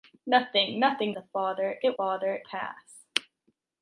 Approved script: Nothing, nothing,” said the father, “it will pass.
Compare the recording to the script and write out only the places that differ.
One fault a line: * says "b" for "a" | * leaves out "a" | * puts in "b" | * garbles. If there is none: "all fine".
* leaves out "said"
* says "father" for "will"